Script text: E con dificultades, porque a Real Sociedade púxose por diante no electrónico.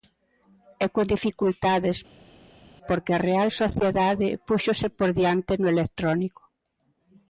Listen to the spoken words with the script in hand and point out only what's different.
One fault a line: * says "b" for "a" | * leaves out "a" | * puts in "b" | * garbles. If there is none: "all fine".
all fine